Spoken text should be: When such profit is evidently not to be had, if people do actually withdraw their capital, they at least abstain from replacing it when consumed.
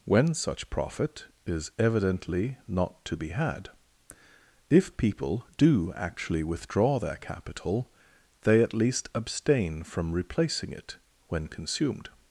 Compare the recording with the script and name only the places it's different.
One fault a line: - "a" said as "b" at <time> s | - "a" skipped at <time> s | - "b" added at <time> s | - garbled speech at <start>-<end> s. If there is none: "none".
none